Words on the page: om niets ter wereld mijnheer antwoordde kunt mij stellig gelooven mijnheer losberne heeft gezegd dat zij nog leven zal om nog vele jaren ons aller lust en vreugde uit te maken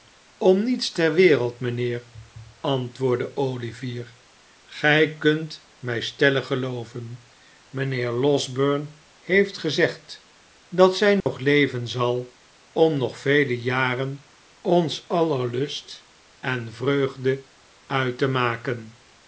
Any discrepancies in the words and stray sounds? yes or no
yes